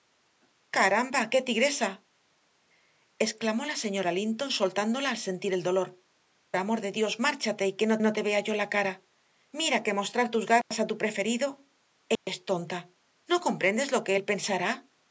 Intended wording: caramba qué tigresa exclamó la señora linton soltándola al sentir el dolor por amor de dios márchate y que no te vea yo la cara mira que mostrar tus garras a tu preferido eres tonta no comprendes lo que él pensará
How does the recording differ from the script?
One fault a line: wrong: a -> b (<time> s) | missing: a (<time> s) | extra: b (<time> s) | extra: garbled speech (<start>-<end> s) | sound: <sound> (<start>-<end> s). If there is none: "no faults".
missing: por (5.9 s)
extra: no (8.0 s)
sound: dropout (10.6-10.7 s)
sound: dropout (12.2-12.3 s)